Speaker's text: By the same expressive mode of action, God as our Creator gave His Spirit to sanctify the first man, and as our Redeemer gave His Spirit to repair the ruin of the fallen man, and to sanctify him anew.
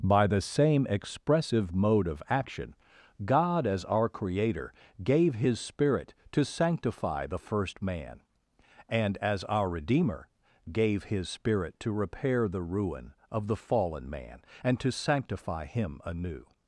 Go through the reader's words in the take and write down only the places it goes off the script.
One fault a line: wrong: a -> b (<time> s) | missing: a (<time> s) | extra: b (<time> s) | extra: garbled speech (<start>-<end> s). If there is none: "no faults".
no faults